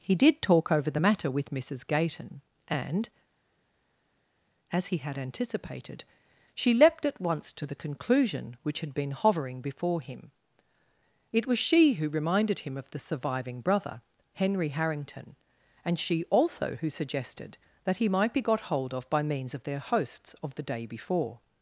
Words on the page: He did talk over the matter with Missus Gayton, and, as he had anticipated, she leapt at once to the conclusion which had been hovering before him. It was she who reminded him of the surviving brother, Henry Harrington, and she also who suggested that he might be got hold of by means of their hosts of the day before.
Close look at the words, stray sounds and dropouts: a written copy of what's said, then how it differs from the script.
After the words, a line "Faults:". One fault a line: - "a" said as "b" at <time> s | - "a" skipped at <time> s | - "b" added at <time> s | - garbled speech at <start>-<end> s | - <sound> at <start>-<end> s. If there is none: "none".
He did talk over the matter with Missus Gayton, and, as he had anticipated, she leapt at once to the conclusion which had been hovering before him. It was she who reminded him of the surviving brother, Henry Harrington, and she also who suggested that he might be got hold of by means of their hosts of the day before.
Faults:
none